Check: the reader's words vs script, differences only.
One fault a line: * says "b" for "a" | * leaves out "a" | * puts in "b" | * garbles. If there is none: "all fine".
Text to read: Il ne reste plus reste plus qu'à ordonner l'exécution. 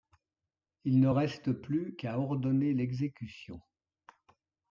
* leaves out "reste plus"